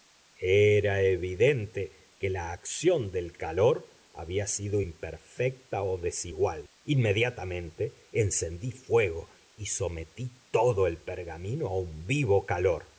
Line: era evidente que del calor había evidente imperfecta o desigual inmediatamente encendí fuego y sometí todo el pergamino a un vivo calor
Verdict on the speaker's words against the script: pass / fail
fail